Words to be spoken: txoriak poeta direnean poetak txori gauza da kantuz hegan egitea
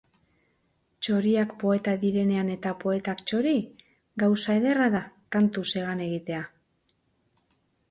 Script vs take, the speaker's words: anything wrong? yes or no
yes